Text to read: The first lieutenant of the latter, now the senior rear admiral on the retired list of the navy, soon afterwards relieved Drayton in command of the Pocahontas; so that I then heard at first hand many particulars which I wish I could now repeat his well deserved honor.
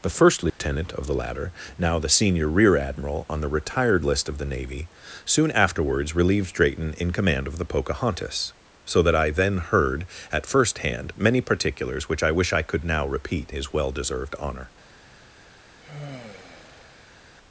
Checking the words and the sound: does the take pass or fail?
fail